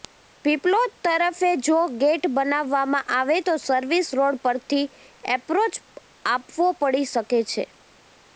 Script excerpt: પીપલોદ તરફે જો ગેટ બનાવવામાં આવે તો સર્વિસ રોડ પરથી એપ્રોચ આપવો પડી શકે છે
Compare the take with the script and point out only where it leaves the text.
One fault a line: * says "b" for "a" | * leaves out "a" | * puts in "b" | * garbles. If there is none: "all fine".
all fine